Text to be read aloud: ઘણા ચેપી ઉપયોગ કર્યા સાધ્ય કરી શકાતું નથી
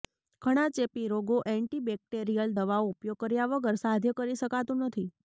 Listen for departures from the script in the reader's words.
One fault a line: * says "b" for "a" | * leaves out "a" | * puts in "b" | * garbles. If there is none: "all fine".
* puts in "રોગો એન્ટીબેક્ટેરિયલ દવાઓ"
* puts in "વગર"